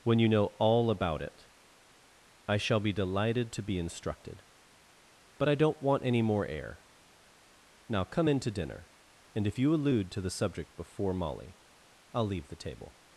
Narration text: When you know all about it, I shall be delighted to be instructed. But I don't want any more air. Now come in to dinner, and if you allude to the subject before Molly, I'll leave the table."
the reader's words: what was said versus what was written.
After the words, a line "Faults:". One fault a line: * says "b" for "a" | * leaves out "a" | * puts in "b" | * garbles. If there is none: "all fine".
When you know all about it, I shall be delighted to be instructed. But I don't want any more air. Now come in to dinner, and if you allude to the subject before Molly, I'll leave the table."
Faults:
all fine